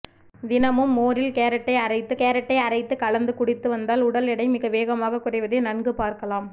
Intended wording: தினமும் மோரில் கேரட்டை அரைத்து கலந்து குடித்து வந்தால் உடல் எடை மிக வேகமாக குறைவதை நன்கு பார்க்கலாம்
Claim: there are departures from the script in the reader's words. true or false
true